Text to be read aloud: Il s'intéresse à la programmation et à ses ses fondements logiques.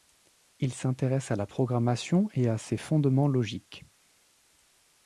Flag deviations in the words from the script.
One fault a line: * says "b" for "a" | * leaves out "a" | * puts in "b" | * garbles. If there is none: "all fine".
* leaves out "ses"